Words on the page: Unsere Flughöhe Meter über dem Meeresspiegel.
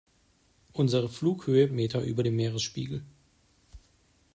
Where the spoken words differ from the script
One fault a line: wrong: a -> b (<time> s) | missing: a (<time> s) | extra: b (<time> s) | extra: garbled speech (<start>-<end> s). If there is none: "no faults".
no faults